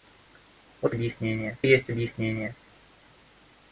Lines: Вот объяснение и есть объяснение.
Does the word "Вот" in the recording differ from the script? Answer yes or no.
no